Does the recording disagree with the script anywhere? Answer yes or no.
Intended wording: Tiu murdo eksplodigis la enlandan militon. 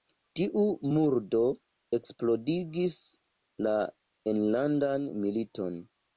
no